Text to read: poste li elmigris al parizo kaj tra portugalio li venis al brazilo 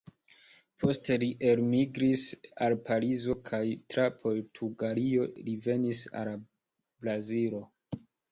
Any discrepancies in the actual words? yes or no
no